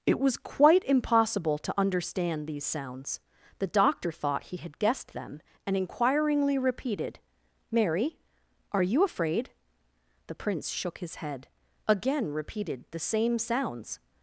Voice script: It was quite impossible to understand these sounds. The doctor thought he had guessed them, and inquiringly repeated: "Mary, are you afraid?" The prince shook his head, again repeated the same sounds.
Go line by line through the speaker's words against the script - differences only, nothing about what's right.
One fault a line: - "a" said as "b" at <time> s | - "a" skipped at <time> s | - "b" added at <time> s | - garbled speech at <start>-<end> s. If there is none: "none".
none